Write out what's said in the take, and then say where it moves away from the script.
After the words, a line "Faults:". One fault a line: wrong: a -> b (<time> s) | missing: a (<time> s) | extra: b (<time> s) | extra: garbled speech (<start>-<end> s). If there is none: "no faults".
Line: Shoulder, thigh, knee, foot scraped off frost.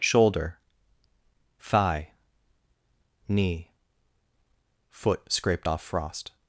Shoulder, thigh, knee, foot scraped off frost.
Faults:
no faults